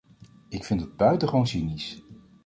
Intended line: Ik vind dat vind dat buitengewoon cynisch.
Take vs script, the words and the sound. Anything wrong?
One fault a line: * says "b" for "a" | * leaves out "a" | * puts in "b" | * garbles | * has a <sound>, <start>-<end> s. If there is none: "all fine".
* leaves out "vind dat"